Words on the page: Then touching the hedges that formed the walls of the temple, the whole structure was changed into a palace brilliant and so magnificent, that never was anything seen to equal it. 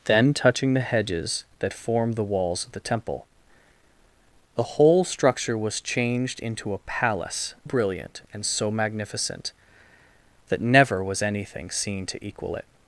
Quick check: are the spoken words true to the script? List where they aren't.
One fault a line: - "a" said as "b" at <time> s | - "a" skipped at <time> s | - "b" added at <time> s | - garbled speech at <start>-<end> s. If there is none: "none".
none